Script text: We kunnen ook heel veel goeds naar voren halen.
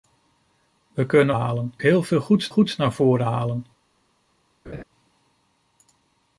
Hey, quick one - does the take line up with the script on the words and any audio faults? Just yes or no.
no